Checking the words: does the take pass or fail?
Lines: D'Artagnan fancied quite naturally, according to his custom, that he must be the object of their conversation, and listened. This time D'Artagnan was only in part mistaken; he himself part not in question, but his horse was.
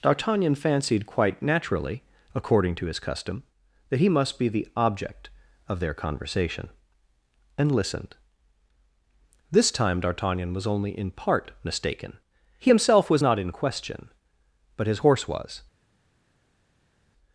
fail